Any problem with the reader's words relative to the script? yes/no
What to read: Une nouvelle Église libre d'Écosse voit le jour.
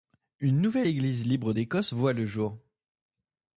no